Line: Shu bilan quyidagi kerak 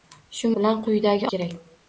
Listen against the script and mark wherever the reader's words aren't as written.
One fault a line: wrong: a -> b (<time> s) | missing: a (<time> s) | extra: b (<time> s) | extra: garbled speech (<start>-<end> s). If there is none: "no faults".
no faults